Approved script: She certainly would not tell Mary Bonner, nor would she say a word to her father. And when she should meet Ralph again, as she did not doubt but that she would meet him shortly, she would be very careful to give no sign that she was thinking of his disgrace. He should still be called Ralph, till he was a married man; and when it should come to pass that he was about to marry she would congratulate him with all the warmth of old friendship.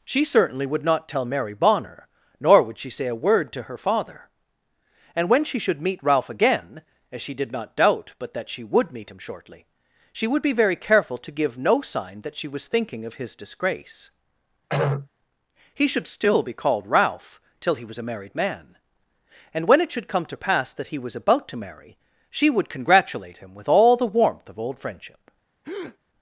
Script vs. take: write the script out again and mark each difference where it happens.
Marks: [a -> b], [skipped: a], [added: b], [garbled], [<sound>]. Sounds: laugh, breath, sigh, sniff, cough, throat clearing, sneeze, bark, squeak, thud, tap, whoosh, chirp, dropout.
She certainly would not tell Mary Bonner, nor would she say a word to her father. And when she should meet Ralph again, as she did not doubt but that she would meet him shortly, she would be very careful to give no sign that she was thinking of his disgrace. [throat clearing] He should still be called Ralph, till he was a married man; and when it should come to pass that he was about to marry she would congratulate him with all the warmth of old friendship. [breath]